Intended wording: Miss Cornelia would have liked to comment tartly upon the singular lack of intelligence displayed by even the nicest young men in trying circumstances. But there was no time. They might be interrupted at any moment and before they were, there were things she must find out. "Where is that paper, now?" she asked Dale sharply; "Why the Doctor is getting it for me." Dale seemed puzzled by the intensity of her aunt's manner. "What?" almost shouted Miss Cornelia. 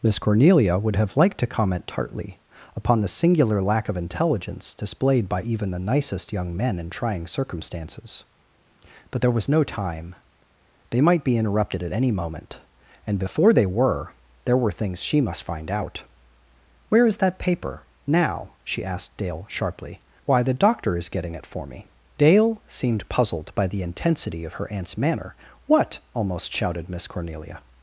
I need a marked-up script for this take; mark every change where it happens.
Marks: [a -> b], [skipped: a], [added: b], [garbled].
Miss Cornelia would have liked to comment tartly upon the singular lack of intelligence displayed by even the nicest young men in trying circumstances. But there was no time. They might be interrupted at any moment and before they were, there were things she must find out. "Where is that paper, now?" she asked Dale sharply; "Why the Doctor is getting it for me." Dale seemed puzzled by the intensity of her aunt's manner. "What?" almost shouted Miss Cornelia.